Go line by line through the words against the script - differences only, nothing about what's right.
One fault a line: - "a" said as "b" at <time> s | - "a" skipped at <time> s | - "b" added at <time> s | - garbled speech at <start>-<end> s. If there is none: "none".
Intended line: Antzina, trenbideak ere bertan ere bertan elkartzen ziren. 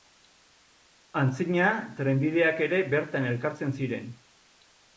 - "ere bertan" skipped at 3.3 s